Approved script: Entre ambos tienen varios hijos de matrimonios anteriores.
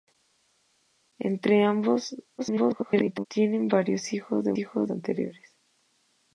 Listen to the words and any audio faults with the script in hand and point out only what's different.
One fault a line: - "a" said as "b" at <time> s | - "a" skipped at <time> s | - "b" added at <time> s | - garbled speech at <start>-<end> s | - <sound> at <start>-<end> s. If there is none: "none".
- garbled speech at 2.4-3.3 s
- "matrimonios" said as "hijos" at 4.6 s